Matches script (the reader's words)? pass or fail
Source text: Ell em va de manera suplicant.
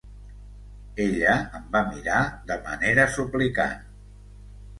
fail